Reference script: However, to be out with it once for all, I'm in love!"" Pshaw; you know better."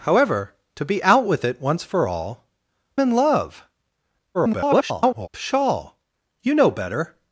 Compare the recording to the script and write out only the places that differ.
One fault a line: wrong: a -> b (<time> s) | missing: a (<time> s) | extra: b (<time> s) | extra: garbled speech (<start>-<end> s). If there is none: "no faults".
missing: I'm (2.5 s)
extra: garbled speech (4.3-5.3 s)